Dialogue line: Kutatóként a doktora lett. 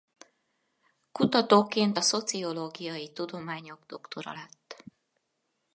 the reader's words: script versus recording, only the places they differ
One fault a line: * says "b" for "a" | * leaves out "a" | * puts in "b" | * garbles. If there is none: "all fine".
* puts in "szociológiai tudományok"